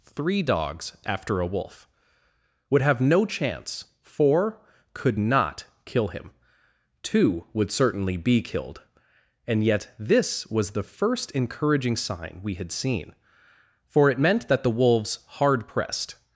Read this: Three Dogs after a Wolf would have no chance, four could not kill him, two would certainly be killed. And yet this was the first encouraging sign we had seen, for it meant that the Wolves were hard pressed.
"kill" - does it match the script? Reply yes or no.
yes